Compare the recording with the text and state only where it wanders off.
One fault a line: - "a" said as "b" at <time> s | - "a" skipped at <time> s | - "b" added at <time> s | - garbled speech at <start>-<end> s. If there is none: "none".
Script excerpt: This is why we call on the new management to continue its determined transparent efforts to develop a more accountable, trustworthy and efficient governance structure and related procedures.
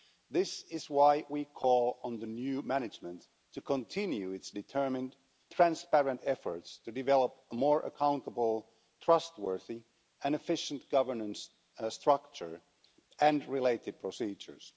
none